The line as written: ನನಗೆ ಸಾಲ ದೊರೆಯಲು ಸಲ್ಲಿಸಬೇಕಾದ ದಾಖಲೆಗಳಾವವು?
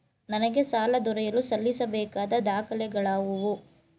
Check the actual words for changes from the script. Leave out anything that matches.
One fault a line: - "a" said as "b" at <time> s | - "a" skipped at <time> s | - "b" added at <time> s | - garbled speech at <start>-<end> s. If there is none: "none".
none